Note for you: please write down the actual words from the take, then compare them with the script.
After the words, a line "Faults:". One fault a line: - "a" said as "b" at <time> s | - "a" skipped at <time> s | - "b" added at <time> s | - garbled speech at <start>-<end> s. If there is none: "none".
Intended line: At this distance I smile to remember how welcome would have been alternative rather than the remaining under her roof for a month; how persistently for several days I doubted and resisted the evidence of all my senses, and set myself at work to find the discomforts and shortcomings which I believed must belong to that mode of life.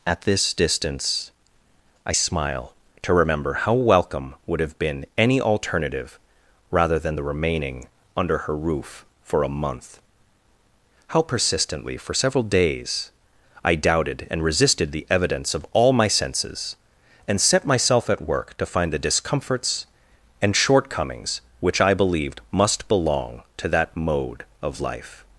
At this distance I smile to remember how welcome would have been any alternative rather than the remaining under her roof for a month; how persistently for several days I doubted and resisted the evidence of all my senses, and set myself at work to find the discomforts and shortcomings which I believed must belong to that mode of life.
Faults:
- "any" added at 5.2 s